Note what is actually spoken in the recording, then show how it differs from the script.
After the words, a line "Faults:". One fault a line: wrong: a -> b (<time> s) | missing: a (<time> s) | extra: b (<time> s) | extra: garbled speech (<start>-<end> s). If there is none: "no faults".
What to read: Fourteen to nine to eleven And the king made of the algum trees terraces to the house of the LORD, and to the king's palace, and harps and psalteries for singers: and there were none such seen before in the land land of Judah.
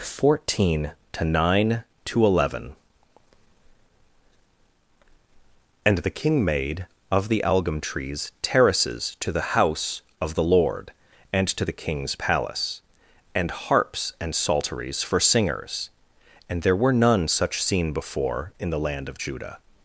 Fourteen to nine to eleven And the king made of the algum trees terraces to the house of the LORD, and to the king's palace, and harps and psalteries for singers: and there were none such seen before in the land of Judah.
Faults:
missing: land (19.1 s)